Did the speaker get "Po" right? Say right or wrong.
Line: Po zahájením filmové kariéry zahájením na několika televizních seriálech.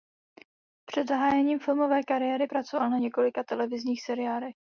wrong